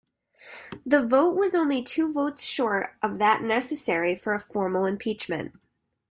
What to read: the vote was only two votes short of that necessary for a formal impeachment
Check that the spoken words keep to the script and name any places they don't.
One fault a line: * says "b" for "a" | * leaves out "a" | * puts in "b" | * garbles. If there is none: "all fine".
all fine